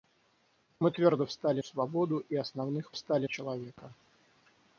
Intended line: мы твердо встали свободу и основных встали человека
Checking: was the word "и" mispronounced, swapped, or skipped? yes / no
no